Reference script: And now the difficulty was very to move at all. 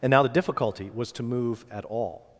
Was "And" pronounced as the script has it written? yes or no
yes